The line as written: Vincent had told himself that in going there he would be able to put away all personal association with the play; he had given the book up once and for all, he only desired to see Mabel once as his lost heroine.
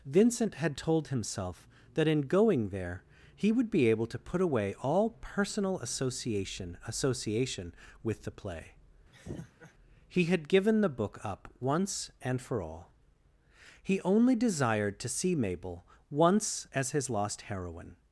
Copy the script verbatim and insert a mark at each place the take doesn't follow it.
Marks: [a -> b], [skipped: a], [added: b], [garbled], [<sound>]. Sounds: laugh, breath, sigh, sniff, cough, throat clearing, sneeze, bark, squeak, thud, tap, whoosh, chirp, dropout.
Vincent had told himself that in going there he would be able to put away all personal association [added: association] with the play; [laugh] he had given the book up once and for all, he only desired to see Mabel once as his lost heroine.